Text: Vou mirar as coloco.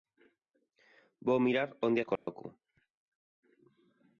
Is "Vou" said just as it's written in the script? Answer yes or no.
yes